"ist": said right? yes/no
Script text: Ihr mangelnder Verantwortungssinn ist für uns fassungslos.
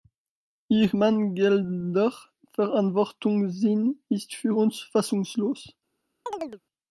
yes